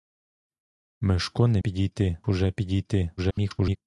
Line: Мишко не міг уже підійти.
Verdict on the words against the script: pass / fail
fail